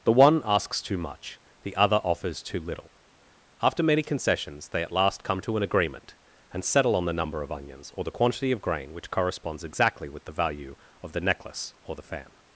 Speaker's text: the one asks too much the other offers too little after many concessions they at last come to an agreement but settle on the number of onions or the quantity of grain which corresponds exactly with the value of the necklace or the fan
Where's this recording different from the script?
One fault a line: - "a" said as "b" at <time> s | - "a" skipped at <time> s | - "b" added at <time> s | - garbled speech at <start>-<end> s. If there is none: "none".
- "but" said as "and" at 6.5 s